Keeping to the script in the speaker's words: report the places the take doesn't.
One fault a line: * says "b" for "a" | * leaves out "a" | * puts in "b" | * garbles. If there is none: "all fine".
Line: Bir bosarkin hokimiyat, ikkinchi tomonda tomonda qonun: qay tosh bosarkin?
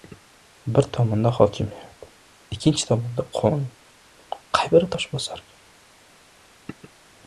* says "tomonda" for "bosarkin"
* leaves out "tomonda"
* puts in "biri"